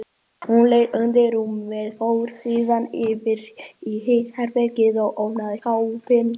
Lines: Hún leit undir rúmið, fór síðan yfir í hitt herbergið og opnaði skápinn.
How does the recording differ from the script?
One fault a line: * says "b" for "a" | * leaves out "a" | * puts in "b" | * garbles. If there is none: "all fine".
all fine